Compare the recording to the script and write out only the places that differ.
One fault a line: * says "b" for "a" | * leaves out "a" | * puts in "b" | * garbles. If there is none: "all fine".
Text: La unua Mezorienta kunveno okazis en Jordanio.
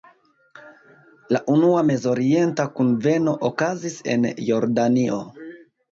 all fine